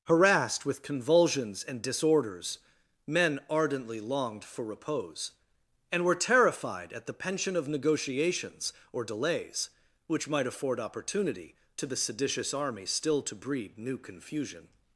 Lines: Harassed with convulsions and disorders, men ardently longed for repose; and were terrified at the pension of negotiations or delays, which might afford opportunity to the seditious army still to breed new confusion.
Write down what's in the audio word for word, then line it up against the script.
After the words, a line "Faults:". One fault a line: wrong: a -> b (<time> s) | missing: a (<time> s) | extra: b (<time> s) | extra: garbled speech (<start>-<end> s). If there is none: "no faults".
Harassed with convulsions and disorders, men ardently longed for repose; and were terrified at the pension of negotiations or delays, which might afford opportunity to the seditious army still to breed new confusion.
Faults:
no faults